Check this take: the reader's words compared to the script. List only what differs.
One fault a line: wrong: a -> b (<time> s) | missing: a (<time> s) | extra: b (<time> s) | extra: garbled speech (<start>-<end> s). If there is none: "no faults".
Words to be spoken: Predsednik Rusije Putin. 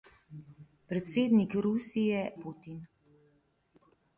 no faults